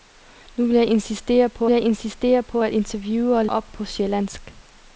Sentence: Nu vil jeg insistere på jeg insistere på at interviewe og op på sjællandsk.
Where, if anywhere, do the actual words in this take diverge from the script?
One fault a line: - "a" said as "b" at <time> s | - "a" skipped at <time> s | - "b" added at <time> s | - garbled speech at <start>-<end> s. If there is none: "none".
none